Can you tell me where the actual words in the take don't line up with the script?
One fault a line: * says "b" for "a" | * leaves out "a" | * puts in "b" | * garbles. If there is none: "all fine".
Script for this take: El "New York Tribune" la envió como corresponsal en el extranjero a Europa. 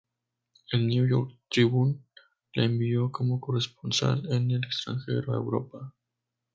all fine